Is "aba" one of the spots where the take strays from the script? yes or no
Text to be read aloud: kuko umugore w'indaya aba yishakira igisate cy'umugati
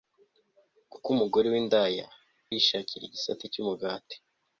yes